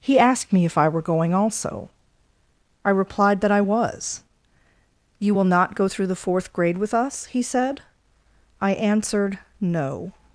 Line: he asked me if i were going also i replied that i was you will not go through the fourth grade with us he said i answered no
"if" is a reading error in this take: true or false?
false